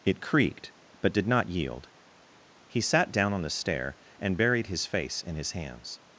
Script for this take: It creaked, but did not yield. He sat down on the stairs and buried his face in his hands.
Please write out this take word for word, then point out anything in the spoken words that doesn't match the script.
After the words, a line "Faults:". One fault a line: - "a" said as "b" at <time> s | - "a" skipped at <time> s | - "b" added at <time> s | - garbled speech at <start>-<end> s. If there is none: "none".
It creaked, but did not yield. He sat down on the stair and buried his face in his hands.
Faults:
- "stairs" said as "stair" at 3.5 s